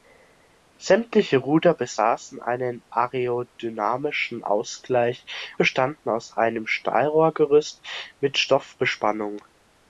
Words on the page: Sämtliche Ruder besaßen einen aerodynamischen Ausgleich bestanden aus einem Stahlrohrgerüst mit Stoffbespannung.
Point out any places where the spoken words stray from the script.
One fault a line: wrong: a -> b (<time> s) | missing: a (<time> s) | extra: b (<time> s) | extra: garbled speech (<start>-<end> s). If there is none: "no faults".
no faults